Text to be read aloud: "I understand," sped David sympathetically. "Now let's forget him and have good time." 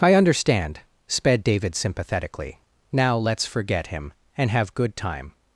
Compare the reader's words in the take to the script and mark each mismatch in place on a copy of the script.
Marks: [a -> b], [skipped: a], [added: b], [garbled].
"I understand," sped David sympathetically. "Now let's forget him and have good time."